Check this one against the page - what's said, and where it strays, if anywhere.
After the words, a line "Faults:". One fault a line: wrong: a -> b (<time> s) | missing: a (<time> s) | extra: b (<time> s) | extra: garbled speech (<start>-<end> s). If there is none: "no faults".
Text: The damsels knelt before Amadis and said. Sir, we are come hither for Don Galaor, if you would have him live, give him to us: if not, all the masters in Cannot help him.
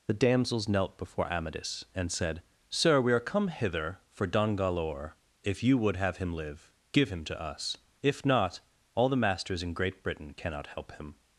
The damsels knelt before Amadis and said. Sir, we are come hither for Don Galaor, if you would have him live, give him to us: if not, all the masters in Great Britain cannot help him.
Faults:
extra: Great Britain (9.7 s)